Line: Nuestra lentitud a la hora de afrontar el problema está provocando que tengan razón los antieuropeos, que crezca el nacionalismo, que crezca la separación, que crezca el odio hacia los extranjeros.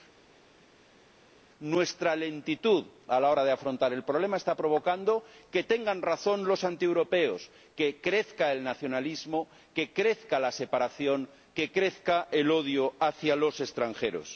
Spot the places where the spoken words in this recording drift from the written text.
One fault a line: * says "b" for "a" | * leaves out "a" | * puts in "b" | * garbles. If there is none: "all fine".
all fine